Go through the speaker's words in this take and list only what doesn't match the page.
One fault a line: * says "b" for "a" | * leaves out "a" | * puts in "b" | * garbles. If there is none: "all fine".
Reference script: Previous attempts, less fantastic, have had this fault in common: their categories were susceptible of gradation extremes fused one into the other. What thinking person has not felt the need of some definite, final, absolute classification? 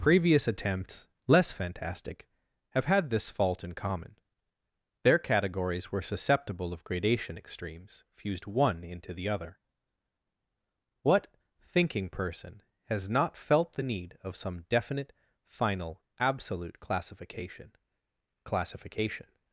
* puts in "classification"